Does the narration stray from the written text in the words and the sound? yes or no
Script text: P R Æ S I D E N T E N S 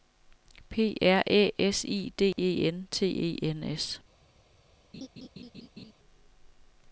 yes